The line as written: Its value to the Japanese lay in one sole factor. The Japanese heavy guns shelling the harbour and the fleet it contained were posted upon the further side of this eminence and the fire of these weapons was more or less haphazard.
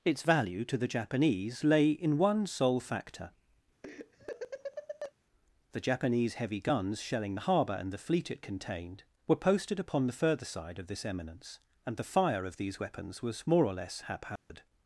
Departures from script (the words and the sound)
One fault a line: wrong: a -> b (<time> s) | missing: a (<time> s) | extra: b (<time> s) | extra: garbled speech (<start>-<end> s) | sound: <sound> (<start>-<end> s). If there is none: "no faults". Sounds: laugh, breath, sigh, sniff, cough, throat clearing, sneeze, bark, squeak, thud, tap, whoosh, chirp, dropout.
sound: laugh (3.8-5.1 s)
sound: dropout (14.4-14.5 s)